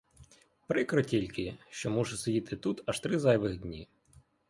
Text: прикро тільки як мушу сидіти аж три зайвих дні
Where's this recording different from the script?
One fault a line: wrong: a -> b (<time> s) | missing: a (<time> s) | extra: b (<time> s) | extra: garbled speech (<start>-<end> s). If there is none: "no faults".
wrong: як -> що (1.7 s)
extra: тут (2.5 s)